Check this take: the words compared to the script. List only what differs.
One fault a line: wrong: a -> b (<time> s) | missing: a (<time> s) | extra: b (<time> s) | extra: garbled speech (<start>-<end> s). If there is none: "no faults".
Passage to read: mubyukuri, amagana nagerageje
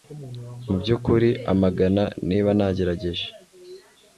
extra: niba (2.3 s)